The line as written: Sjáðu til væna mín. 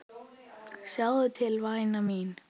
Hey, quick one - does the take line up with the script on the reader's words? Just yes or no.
yes